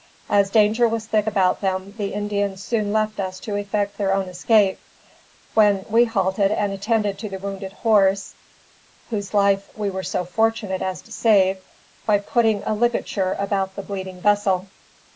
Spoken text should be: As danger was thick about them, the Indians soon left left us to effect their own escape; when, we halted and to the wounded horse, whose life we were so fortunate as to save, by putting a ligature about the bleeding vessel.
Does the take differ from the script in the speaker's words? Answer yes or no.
yes